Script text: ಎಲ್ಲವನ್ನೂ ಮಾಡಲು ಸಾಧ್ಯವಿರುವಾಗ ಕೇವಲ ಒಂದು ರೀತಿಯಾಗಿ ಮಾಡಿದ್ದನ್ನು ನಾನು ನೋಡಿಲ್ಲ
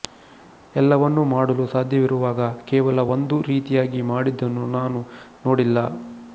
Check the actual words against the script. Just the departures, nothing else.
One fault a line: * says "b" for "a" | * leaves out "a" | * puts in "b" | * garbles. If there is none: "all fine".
all fine